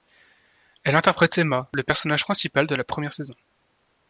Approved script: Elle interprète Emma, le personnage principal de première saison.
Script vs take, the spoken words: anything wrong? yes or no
yes